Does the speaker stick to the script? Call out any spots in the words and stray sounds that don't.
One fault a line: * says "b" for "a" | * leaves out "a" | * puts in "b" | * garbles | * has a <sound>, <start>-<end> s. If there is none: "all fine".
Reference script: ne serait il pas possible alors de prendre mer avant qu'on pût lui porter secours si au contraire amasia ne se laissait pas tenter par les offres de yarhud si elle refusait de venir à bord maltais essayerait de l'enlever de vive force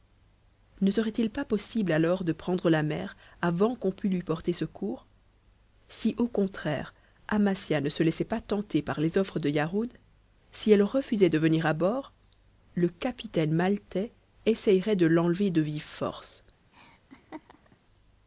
* puts in "la"
* puts in "le capitaine"
* has a laugh, 16.7-17.8 s